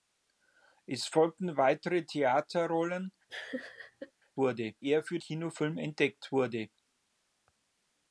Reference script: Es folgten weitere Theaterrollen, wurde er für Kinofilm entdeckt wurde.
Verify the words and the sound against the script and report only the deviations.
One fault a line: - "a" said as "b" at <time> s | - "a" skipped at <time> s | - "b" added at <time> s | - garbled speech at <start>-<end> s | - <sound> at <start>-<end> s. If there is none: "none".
- laugh at 3.3-4.1 s